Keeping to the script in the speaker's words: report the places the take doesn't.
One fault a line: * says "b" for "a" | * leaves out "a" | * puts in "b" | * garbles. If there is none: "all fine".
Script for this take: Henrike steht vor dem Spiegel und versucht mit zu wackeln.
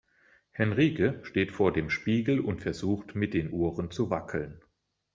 * puts in "den Ohren"